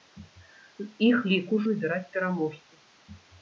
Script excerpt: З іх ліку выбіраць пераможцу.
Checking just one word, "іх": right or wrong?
right